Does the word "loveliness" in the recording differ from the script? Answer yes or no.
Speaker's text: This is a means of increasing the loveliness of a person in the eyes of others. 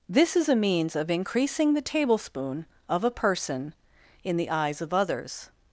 yes